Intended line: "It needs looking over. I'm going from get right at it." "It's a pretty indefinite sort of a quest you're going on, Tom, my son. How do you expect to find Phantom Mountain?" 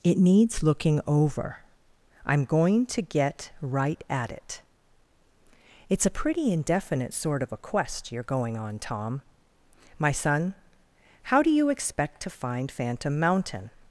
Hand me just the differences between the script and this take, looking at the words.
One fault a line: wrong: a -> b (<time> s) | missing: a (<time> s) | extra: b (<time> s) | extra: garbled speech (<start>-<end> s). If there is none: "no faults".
wrong: from -> to (2.9 s)